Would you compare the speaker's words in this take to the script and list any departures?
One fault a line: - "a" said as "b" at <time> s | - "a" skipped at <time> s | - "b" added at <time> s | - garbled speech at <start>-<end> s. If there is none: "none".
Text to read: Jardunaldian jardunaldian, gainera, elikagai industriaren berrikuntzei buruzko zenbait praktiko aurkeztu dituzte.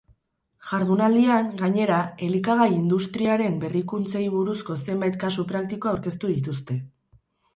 - "jardunaldian" skipped at 1.5 s
- "kasu" added at 5.2 s